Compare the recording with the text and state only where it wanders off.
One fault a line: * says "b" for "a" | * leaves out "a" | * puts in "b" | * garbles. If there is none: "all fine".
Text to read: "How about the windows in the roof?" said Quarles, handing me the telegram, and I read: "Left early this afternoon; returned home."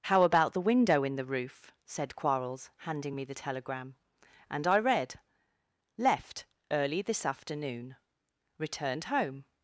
* says "window" for "windows"